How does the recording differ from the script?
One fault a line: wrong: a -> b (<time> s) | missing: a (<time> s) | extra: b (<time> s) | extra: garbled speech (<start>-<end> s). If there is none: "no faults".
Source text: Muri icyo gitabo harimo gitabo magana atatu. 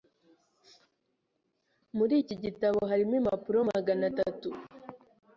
wrong: icyo -> iki (2.2 s)
wrong: gitabo -> impapuro (3.2 s)